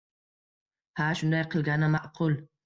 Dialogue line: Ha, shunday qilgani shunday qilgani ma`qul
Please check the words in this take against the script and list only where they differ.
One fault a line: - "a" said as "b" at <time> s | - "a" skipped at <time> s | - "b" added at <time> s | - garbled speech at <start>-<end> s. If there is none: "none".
- "shunday qilgani" skipped at 1.9 s